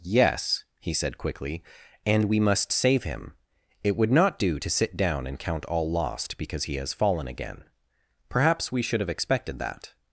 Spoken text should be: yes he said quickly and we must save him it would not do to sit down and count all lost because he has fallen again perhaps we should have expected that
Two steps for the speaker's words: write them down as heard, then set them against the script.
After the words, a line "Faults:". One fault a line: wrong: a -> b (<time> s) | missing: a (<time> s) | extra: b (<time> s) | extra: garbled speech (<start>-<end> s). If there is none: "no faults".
yes he said quickly and we must save him it would not do to sit down and count all lost because he has fallen again perhaps we should have expected that
Faults:
no faults